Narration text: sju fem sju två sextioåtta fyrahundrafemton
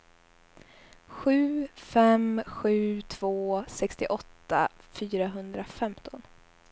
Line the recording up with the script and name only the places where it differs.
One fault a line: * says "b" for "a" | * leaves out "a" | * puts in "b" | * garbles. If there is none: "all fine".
all fine